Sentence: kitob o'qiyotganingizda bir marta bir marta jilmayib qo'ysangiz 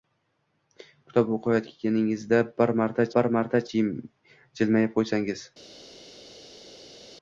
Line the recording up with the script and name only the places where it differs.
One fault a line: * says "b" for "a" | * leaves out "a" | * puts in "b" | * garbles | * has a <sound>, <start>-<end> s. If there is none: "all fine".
all fine